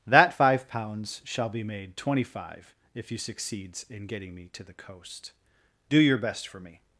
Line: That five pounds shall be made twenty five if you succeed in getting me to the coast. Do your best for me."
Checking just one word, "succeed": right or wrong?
wrong